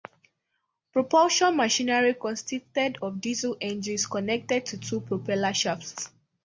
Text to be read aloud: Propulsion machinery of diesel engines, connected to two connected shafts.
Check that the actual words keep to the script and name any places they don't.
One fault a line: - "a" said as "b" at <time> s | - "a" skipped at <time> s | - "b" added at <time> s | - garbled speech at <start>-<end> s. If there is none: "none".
- "consisted" added at 2.1 s
- "connected" said as "propeller" at 5.0 s